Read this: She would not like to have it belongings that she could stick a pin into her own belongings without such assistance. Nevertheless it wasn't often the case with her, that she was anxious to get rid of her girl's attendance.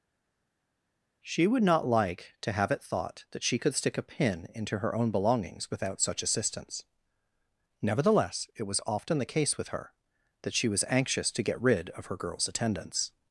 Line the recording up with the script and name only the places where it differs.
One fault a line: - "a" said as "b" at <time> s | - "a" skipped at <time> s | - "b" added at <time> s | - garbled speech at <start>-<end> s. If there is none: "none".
- "belongings" said as "thought" at 2.8 s
- "wasn't" said as "was" at 8.6 s